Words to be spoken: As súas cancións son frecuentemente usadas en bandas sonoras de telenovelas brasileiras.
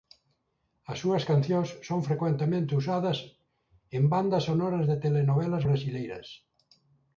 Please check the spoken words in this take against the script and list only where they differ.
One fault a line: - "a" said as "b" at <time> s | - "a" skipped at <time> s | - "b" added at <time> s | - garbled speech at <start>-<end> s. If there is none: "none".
none